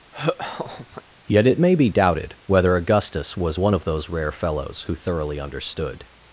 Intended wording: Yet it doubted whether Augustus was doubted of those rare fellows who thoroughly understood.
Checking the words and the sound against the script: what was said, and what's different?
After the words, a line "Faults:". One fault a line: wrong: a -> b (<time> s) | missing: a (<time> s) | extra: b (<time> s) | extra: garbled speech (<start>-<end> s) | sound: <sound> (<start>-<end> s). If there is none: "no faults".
Yet it may be doubted whether Augustus was one of those rare fellows who thoroughly understood.
Faults:
sound: laugh (0.1-1.0 s)
extra: may be (1.6 s)
wrong: doubted -> one (3.6 s)